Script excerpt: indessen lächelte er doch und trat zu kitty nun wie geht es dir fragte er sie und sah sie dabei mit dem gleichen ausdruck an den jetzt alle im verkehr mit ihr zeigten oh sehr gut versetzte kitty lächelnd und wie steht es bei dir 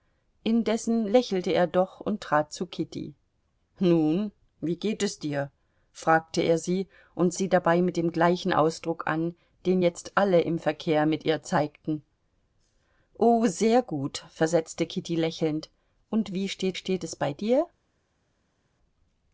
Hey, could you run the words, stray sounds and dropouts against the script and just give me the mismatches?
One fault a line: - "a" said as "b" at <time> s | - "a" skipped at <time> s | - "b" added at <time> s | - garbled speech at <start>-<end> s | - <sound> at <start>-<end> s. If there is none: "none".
- "sah" skipped at 7.3 s
- "steht" added at 16.8 s